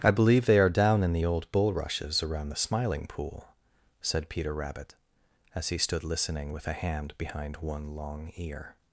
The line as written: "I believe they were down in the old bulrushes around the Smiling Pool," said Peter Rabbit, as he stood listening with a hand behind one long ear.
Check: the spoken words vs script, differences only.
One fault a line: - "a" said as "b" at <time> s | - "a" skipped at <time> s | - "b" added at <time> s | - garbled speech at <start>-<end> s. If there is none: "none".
- "were" said as "are" at 0.6 s